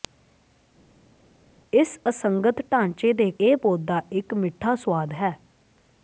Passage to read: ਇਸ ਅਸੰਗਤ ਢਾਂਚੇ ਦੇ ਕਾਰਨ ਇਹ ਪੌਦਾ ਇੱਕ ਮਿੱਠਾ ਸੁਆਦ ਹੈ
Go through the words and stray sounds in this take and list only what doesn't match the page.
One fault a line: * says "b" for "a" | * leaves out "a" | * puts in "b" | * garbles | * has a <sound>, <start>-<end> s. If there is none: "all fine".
* leaves out "ਕਾਰਨ"